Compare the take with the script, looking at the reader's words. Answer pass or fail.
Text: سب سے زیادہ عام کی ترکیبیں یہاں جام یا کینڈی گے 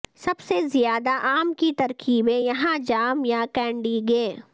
pass